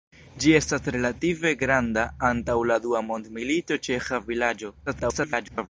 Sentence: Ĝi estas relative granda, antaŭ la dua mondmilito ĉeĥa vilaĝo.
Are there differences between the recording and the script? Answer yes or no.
yes